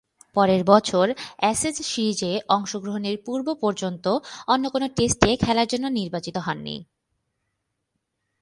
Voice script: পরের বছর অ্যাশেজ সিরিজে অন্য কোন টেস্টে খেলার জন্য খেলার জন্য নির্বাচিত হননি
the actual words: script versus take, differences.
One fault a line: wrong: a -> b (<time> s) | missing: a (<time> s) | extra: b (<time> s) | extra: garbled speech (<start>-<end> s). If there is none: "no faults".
extra: অংশগ্রহণের পূর্ব পর্যন্ত (2.5 s)
missing: খেলার জন্য (5.8 s)